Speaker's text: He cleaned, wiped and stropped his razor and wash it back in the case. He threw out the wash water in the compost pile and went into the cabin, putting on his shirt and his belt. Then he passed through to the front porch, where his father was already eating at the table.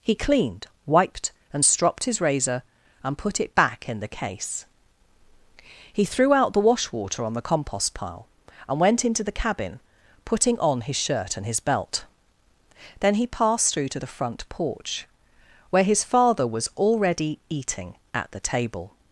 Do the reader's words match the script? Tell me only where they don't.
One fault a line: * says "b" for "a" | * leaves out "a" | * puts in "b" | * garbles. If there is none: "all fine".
* says "put" for "wash"
* says "on" for "in"